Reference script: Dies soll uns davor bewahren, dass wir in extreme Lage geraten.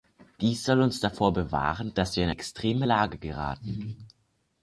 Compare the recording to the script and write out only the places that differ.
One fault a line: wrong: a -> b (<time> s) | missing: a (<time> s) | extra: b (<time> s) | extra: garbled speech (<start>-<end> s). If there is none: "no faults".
no faults